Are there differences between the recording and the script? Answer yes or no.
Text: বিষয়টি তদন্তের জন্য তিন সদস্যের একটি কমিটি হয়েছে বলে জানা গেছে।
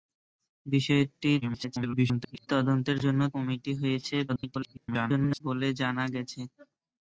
yes